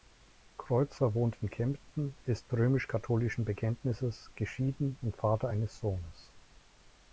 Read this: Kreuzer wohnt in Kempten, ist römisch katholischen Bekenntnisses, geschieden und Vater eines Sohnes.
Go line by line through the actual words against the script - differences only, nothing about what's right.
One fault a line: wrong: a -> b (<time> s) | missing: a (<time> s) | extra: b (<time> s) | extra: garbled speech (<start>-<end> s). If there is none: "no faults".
no faults